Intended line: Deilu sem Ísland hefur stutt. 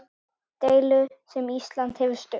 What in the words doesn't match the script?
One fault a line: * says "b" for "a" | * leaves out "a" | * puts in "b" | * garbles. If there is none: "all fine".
all fine